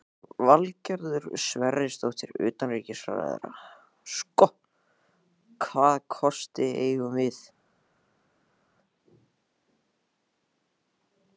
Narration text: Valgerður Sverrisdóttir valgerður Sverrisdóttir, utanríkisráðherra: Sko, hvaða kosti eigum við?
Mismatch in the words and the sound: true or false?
true